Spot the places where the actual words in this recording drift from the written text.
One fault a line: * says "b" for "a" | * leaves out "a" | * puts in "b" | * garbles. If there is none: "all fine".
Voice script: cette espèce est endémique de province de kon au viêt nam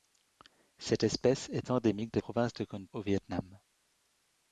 all fine